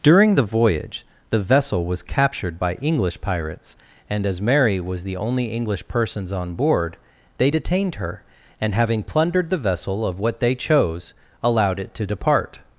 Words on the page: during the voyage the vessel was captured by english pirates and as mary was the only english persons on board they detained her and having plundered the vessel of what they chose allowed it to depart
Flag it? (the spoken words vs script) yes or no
no